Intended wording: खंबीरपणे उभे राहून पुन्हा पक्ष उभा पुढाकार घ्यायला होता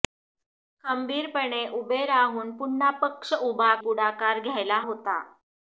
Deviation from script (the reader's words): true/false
false